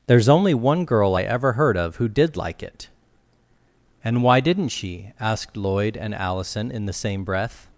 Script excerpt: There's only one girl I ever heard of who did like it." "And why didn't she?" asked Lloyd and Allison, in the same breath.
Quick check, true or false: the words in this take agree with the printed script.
true